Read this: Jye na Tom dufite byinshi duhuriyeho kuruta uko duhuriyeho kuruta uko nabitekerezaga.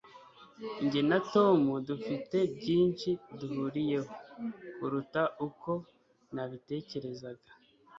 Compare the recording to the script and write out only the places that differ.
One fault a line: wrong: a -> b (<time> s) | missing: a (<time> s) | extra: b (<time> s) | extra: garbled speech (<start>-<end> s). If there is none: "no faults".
missing: duhuriyeho kuruta uko (5.7 s)